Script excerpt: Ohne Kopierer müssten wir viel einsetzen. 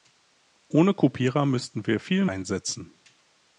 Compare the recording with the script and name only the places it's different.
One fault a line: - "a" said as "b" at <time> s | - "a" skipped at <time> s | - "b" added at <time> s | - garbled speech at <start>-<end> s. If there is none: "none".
none